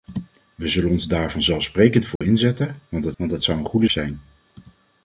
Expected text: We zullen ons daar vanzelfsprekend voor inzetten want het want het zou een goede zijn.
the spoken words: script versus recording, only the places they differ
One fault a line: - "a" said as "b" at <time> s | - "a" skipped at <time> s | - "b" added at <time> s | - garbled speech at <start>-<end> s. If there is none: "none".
none